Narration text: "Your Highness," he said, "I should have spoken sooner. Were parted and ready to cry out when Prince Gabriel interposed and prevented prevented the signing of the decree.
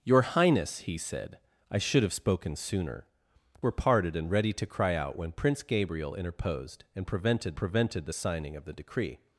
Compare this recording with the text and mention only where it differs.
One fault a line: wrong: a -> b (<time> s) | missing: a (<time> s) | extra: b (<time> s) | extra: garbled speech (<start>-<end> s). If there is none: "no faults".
no faults